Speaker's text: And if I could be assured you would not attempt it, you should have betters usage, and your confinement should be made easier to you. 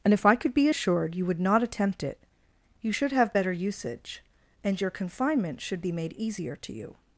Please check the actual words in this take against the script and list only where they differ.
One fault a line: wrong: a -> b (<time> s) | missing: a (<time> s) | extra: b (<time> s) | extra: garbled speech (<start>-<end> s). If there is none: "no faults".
wrong: betters -> better (3.3 s)